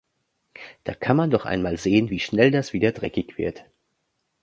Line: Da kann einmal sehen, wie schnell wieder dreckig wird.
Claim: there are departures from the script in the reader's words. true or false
true